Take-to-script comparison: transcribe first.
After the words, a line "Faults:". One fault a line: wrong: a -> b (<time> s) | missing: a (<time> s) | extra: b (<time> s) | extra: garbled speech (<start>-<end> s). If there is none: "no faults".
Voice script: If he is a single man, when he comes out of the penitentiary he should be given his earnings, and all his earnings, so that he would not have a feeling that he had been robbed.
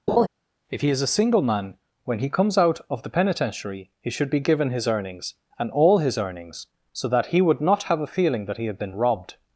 If he is a single man, when he comes out of the penitentiary he should be given his earnings, and all his earnings, so that he would not have a feeling that he had been robbed.
Faults:
no faults